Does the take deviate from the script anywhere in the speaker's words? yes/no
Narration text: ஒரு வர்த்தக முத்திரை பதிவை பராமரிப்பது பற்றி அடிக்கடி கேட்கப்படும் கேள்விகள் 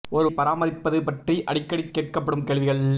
yes